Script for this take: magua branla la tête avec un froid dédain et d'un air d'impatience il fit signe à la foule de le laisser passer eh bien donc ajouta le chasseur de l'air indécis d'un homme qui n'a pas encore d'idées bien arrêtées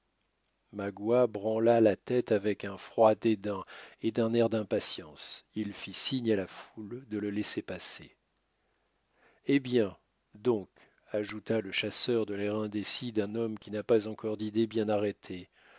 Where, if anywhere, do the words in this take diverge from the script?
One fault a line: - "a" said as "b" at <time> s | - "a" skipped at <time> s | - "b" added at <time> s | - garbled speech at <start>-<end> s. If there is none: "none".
none